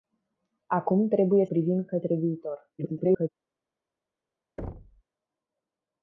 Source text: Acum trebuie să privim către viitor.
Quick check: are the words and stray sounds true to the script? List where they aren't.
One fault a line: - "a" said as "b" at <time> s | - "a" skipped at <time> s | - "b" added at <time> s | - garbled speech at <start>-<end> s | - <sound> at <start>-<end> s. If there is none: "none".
- "să" skipped at 1.4 s
- garbled speech at 2.8-3.3 s
- thud at 4.6-5.0 s